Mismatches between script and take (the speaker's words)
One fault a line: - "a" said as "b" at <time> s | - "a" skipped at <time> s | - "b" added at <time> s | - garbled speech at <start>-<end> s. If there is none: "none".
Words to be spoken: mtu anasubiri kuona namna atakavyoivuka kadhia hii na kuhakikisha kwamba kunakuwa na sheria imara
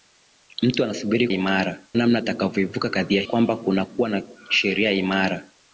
- "kuona" said as "imara" at 1.3 s
- "hii na kuhakikisha" skipped at 3.2 s